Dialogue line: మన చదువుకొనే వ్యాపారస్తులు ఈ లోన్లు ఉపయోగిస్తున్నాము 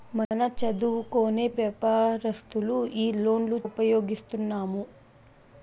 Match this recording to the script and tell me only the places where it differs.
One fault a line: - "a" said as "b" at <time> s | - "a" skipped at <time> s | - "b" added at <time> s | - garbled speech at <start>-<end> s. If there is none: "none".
none